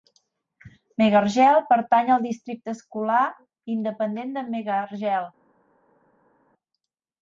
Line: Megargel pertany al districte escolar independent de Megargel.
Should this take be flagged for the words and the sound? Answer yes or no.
no